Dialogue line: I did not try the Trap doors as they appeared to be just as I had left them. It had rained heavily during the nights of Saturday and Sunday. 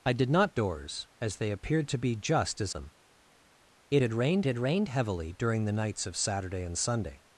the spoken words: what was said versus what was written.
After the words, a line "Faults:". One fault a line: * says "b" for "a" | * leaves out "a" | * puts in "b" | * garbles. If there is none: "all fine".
I did not doors as they appeared to be just as them. It had rained had rained heavily during the nights of Saturday and Sunday.
Faults:
* leaves out "try the Trap"
* says "them It" for "I"
* says "rained" for "left them It"